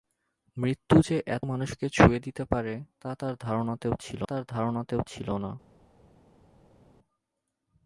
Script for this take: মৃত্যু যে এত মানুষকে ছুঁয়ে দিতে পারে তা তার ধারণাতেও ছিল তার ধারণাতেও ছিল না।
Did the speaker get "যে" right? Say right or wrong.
right